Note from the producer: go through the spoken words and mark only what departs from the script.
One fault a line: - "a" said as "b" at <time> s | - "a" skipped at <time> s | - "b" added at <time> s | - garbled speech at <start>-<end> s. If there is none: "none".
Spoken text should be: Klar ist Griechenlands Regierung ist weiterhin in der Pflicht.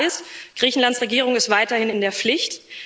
none